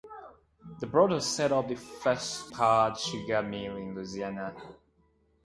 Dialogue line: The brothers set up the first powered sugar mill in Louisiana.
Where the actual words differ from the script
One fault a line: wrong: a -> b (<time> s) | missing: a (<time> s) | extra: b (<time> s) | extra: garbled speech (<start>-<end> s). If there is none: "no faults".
no faults